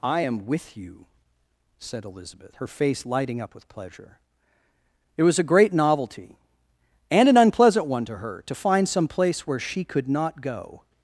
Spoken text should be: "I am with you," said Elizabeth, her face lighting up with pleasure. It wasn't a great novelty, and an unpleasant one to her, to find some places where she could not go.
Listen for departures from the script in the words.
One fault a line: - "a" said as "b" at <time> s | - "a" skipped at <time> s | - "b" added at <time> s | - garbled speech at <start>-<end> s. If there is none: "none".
- "wasn't" said as "was" at 5.2 s
- "places" said as "place" at 9.1 s